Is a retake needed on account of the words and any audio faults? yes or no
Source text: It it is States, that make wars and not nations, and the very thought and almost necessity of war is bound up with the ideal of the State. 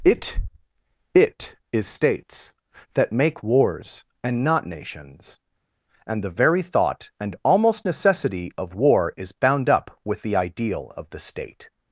no